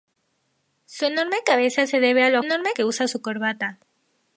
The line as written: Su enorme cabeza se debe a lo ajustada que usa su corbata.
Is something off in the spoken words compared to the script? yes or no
yes